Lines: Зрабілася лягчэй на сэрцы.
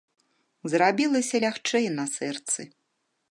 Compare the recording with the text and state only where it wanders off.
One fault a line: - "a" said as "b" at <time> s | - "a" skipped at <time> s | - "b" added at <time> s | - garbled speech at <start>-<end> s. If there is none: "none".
none